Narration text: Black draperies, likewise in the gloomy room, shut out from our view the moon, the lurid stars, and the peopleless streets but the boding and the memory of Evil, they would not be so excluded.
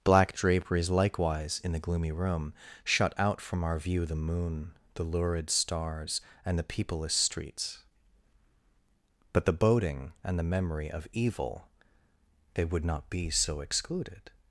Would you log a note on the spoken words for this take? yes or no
no